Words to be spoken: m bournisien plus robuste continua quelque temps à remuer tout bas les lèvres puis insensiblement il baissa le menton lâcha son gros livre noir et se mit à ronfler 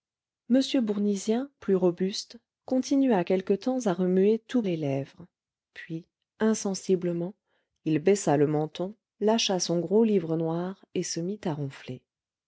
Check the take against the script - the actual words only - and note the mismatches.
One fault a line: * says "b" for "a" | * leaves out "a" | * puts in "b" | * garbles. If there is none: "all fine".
* leaves out "bas"